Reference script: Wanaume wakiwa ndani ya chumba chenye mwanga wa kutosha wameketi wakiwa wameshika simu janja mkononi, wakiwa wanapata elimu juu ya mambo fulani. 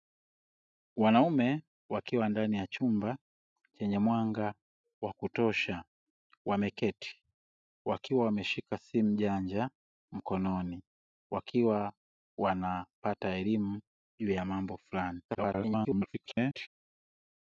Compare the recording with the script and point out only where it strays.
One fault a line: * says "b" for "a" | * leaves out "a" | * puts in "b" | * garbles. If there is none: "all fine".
* garbles